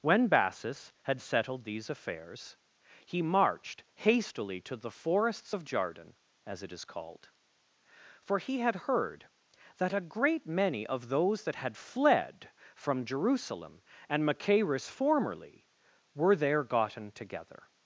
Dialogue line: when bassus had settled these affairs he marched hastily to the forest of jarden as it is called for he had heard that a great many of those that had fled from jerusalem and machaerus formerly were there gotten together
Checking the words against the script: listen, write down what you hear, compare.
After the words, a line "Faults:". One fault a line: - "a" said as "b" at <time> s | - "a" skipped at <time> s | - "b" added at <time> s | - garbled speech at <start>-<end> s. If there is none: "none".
when bassus had settled these affairs he marched hastily to the forests of jarden as it is called for he had heard that a great many of those that had fled from jerusalem and machaerus formerly were there gotten together
Faults:
- "forest" said as "forests" at 4.9 s